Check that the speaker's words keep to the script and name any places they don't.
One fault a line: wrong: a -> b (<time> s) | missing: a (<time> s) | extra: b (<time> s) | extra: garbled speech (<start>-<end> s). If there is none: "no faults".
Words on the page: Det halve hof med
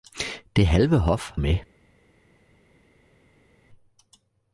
no faults